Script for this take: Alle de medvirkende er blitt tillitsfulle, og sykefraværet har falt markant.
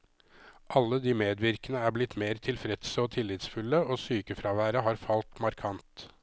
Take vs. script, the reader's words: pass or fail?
fail